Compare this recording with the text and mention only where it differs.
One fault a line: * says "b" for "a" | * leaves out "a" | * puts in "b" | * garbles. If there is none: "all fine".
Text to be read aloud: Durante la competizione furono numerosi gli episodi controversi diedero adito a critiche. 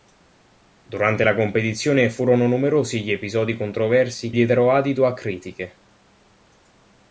all fine